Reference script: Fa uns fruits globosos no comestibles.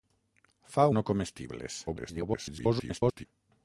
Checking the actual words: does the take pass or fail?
fail